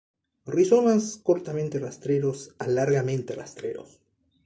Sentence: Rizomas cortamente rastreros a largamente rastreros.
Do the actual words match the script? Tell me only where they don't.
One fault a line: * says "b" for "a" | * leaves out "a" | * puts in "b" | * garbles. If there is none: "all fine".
all fine